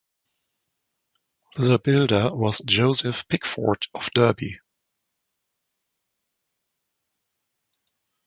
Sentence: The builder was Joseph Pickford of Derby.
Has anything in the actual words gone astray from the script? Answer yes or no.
no